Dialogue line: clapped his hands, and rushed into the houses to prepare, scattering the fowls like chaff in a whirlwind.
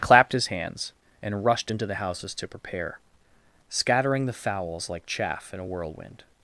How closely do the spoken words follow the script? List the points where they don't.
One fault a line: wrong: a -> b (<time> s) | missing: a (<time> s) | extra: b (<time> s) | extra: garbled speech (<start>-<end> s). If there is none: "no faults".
no faults